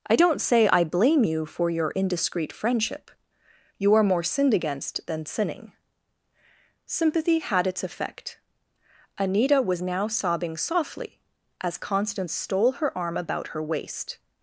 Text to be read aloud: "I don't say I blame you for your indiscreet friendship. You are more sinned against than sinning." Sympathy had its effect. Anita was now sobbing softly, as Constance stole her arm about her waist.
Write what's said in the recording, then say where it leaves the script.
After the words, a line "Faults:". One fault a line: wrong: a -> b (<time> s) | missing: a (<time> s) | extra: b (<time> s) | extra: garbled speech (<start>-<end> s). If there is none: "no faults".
"I don't say I blame you for your indiscreet friendship. You are more sinned against than sinning." Sympathy had its effect. Anita was now sobbing softly, as Constance stole her arm about her waist.
Faults:
no faults